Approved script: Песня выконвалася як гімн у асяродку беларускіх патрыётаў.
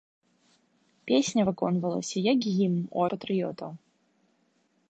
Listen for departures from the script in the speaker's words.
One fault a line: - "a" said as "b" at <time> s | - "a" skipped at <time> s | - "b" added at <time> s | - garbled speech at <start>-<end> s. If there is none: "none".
- "асяродку беларускіх" skipped at 3.0 s